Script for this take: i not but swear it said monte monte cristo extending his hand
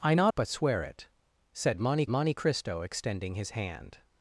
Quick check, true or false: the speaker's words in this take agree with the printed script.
true